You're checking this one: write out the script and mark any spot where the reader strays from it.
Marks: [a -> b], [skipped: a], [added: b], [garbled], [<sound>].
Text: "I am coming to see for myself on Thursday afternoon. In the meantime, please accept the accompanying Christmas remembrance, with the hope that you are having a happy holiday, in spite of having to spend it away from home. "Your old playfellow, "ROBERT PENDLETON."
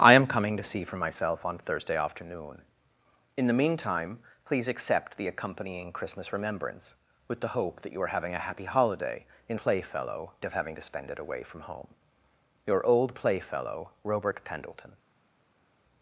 "I am coming to see for myself on Thursday afternoon. In the meantime, please accept the accompanying Christmas remembrance, with the hope that you are having a happy holiday, in [spite -> playfellow] of having to spend it away from home. "Your old playfellow, "ROBERT PENDLETON."